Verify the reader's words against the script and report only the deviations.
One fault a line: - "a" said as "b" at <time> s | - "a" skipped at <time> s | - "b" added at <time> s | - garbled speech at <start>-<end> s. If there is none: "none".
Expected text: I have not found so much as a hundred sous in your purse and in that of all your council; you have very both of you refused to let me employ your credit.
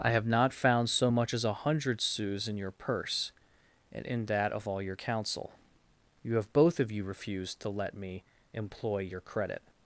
- "very" skipped at 6.5 s